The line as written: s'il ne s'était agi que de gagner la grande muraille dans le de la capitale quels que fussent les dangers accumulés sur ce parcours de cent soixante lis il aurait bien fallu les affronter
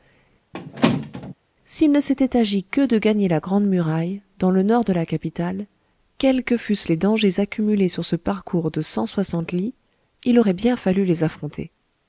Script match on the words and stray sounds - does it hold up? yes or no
no